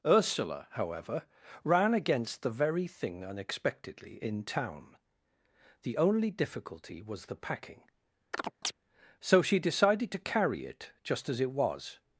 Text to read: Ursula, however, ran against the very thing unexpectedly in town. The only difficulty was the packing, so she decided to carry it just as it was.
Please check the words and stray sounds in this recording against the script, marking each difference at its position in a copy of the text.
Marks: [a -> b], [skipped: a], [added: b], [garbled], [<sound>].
Ursula, however, ran against the very thing unexpectedly in town. The only difficulty was the packing, [chirp] so she decided to carry it just as it was.